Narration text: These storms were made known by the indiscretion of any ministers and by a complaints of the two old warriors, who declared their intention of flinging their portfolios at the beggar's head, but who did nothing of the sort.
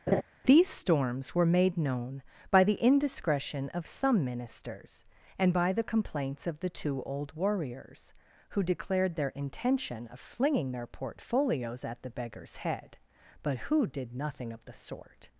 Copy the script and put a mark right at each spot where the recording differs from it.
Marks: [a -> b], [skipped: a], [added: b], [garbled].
These storms were made known by the indiscretion of [any -> some] ministers and by [a -> the] complaints of the two old warriors, who declared their intention of flinging their portfolios at the beggar's head, but who did nothing of the sort.